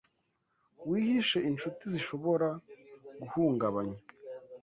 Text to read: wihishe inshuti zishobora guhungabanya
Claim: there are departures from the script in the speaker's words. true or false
false